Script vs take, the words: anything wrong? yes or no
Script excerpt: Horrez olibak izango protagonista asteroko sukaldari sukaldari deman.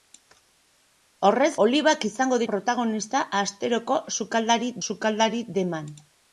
no